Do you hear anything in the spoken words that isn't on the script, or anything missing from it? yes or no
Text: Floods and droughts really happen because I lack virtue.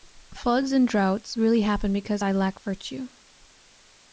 no